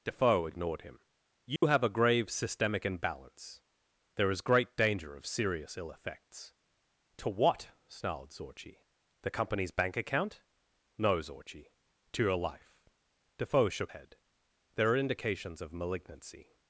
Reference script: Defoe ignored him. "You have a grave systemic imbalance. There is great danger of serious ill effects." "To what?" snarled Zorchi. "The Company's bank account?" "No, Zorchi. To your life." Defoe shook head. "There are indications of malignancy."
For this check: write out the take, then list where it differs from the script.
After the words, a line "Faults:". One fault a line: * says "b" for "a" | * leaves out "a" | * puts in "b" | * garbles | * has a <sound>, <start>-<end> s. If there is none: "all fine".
Defoe ignored him. "You have a grave systemic imbalance. There is great danger of serious ill effects." "To what?" snarled Zorchi. "The Company's bank account?" "No, Zorchi. To your life." Defoe shook head. "There are indications of malignancy."
Faults:
* has a dropout, 1.6-1.6 s